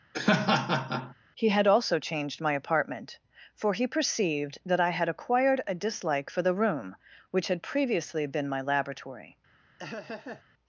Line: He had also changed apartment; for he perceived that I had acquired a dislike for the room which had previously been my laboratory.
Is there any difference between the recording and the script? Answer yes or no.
yes